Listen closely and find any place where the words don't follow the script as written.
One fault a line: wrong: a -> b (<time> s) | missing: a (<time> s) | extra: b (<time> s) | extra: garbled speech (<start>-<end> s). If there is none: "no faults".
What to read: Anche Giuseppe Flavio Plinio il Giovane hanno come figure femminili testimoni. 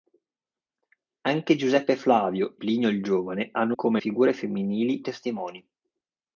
no faults